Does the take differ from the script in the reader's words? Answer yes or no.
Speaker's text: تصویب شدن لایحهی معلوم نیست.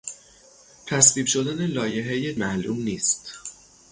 no